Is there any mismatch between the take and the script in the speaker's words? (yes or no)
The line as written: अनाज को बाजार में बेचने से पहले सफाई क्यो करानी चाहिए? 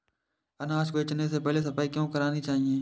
yes